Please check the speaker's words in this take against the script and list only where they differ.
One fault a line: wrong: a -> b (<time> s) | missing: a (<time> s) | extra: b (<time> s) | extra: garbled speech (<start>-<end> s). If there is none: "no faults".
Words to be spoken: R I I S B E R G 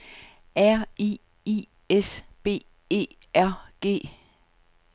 no faults